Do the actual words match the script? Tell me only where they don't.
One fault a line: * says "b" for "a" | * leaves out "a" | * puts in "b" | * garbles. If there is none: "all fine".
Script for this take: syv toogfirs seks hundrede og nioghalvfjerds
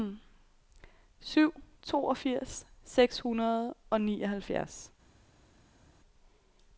all fine